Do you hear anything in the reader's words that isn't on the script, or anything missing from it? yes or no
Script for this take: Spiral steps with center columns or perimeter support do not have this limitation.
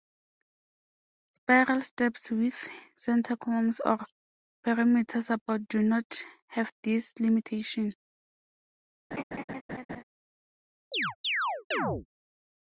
no